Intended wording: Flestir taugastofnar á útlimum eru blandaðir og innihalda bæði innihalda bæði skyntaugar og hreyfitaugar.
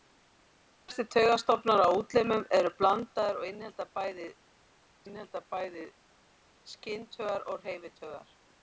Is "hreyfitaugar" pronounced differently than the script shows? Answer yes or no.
no